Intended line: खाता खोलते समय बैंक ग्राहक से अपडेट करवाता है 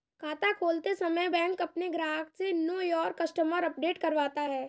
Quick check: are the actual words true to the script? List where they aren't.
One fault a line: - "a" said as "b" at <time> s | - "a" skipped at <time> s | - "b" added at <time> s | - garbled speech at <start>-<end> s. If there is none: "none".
- "अपने" added at 1.6 s
- "नो योर कस्टमर" added at 2.5 s